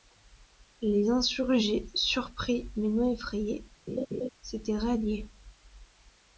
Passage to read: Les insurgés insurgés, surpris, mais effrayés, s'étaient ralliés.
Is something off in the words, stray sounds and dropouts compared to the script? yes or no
yes